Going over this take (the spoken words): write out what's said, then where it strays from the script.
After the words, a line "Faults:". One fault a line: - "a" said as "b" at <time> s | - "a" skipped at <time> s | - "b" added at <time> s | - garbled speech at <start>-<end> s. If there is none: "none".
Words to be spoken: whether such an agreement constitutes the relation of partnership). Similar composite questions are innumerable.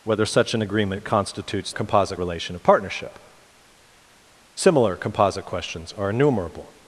whether such an agreement constitutes composite relation of partnership). Similar composite questions are innumerable.
Faults:
- "the" said as "composite" at 1.7 s